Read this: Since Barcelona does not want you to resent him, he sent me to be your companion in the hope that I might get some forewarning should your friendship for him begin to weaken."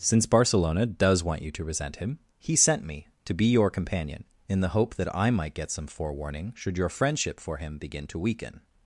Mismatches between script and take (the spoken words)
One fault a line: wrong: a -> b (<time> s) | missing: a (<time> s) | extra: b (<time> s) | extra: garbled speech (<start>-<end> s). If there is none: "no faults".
missing: not (1.2 s)